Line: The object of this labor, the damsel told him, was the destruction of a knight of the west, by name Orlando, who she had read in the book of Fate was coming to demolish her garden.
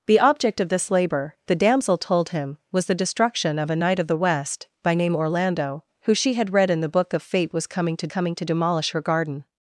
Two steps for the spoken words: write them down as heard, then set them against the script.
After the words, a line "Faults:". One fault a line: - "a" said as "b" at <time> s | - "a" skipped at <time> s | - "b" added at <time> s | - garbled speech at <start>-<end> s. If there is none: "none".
The object of this labor, the damsel told him, was the destruction of a knight of the west, by name Orlando, who she had read in the book of Fate was coming to coming to demolish her garden.
Faults:
- "coming to" added at 8.1 s